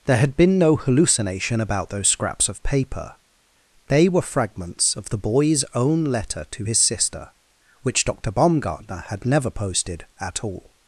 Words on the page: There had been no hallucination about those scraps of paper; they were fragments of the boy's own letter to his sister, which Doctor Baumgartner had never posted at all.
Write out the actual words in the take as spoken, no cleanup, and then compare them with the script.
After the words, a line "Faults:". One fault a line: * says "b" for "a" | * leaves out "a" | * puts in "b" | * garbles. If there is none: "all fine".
There had been no hallucination about those scraps of paper; they were fragments of the boy's own letter to his sister, which Doctor Baumgartner had never posted at all.
Faults:
all fine